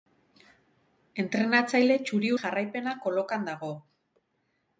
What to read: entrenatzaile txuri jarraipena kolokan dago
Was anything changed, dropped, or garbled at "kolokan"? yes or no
no